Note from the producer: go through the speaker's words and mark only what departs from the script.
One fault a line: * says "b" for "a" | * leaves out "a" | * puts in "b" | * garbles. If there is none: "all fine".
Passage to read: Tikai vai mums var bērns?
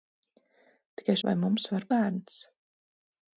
all fine